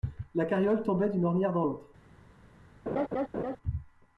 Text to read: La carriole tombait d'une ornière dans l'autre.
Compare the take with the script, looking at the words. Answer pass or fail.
pass